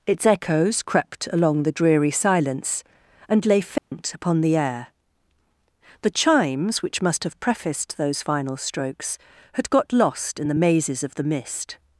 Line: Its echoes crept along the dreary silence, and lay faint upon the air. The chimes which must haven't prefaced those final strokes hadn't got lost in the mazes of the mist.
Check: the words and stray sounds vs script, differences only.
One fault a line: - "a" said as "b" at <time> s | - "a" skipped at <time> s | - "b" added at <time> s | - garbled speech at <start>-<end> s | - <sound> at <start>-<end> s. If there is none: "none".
- dropout at 3.8-3.9 s
- "haven't" said as "have" at 7.2 s
- "hadn't" said as "had" at 9.5 s